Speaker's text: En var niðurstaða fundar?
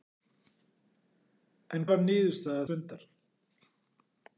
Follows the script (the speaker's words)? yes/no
yes